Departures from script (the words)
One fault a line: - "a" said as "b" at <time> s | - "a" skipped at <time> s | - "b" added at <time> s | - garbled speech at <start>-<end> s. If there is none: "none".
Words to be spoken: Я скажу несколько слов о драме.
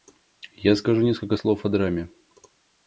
none